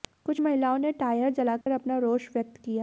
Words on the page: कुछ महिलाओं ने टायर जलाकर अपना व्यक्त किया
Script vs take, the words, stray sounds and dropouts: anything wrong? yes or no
yes